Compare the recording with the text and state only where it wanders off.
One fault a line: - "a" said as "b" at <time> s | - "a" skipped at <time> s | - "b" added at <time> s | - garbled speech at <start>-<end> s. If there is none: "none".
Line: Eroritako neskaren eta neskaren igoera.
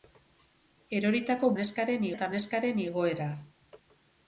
none